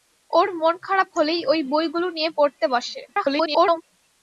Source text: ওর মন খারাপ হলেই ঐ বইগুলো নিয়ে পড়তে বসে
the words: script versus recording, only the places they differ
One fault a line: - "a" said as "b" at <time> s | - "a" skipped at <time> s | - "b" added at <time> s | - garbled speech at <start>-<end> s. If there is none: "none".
- garbled speech at 3.1-3.8 s